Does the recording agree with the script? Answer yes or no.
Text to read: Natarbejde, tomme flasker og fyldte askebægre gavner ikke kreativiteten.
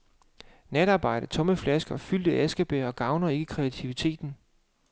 yes